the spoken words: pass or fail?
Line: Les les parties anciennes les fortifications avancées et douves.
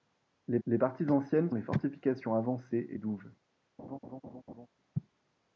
pass